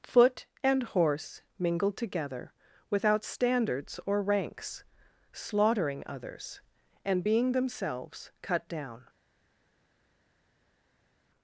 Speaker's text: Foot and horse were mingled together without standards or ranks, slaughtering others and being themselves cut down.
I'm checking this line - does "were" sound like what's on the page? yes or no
no